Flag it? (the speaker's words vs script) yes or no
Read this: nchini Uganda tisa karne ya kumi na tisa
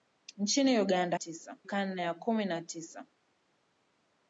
no